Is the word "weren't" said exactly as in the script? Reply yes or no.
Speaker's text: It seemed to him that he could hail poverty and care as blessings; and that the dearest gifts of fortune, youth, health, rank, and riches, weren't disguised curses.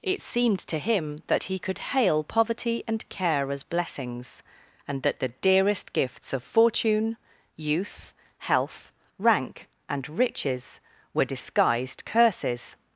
no